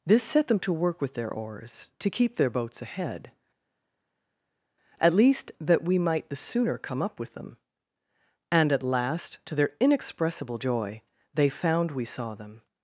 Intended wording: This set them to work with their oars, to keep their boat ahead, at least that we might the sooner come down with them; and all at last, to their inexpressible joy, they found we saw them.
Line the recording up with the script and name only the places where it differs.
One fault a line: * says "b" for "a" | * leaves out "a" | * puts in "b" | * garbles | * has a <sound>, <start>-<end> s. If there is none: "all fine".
* says "boats" for "boat"
* says "up" for "down"
* leaves out "all"